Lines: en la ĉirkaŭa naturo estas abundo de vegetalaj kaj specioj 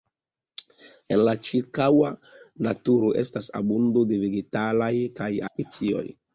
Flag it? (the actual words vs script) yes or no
no